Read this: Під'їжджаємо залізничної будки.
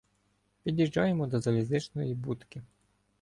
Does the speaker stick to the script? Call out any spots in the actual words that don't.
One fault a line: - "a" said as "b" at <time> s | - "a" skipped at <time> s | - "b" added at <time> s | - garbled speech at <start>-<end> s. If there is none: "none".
- "до" added at 1.3 s